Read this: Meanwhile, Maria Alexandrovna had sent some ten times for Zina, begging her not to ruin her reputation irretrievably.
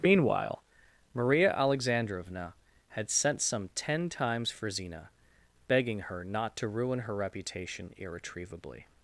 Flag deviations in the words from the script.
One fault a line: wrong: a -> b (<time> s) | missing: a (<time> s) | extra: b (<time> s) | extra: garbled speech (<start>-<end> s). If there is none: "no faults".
no faults